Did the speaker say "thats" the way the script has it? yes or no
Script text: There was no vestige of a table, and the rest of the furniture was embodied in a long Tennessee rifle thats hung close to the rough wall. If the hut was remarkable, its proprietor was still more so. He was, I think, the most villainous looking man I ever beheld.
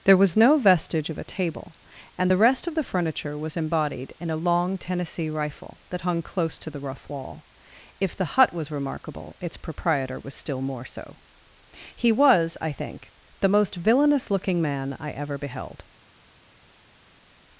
no